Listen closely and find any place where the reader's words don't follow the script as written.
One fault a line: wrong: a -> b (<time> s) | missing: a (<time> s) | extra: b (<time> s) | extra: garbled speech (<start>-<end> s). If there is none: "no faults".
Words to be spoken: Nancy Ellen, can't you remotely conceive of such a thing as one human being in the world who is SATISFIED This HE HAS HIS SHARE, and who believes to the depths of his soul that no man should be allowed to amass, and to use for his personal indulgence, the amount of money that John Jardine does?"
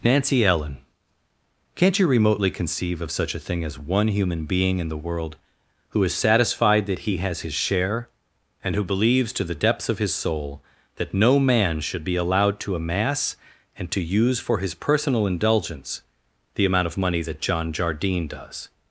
wrong: This -> THAT (6.9 s)